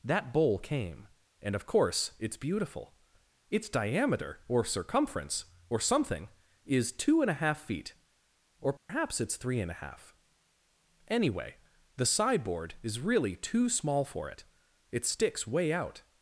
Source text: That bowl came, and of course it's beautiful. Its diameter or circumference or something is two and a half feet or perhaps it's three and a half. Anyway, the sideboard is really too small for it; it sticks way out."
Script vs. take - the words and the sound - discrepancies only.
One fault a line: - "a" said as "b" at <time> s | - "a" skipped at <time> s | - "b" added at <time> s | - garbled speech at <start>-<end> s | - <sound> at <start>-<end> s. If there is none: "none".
- dropout at 8.8-8.9 s